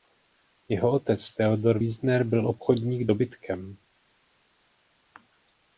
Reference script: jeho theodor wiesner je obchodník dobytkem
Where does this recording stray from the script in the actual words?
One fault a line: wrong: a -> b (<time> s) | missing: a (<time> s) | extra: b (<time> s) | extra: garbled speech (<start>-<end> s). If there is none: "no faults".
extra: otec (0.9 s)
wrong: je -> byl (2.2 s)